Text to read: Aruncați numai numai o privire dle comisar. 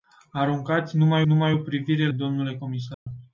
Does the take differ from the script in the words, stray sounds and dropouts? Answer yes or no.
yes